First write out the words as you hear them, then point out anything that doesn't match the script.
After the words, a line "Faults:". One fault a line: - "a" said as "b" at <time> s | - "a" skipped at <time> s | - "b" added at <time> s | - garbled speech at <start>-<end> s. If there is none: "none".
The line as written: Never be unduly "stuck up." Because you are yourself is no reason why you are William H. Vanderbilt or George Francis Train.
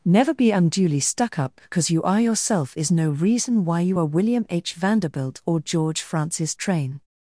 Never be unduly "stuck up." Because you are yourself is no reason why you are William H. Vanderbilt or George Francis Train.
Faults:
none